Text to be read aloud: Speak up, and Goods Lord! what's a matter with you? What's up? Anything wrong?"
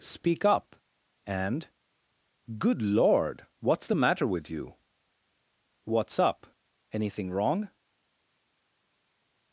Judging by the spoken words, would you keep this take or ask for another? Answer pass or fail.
fail